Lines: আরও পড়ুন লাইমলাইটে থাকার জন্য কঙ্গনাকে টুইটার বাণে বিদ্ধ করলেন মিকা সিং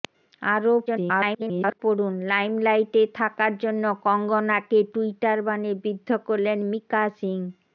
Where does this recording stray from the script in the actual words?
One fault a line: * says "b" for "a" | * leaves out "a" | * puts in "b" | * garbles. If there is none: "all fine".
* garbles